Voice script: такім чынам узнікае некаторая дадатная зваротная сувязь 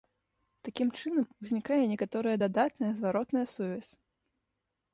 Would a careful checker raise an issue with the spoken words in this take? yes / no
no